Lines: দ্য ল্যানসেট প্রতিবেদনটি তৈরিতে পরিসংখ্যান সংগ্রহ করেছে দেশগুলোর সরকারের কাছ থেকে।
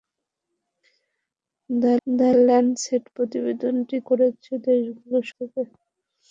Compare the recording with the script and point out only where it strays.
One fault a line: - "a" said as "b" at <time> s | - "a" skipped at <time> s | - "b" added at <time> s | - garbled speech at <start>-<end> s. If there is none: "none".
- "দ্য" added at 2.1 s
- "তৈরিতে পরিসংখ্যান সংগ্রহ" skipped at 4.0 s
- "সরকারের কাছ" skipped at 5.2 s